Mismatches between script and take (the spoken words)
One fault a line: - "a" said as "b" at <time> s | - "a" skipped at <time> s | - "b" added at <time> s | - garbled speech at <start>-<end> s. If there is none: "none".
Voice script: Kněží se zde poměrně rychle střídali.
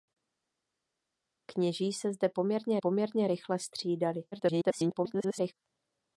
- "poměrně" added at 2.8 s
- garbled speech at 4.3-5.5 s